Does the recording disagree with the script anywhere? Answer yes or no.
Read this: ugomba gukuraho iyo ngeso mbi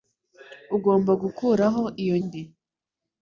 yes